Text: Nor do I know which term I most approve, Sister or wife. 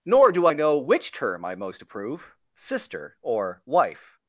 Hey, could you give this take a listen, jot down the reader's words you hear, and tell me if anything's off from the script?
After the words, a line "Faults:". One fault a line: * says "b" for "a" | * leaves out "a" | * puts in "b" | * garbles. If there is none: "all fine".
Nor do I know which term I most approve, Sister or wife.
Faults:
all fine